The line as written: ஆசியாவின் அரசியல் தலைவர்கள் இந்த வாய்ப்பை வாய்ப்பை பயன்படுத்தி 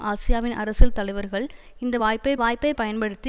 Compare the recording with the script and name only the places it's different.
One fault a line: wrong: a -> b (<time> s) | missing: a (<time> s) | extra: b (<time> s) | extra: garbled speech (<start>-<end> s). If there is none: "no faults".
no faults